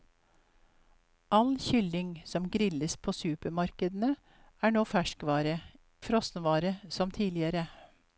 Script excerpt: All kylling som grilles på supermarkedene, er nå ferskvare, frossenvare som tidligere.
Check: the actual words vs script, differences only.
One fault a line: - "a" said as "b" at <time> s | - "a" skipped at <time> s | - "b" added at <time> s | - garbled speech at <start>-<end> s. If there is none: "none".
none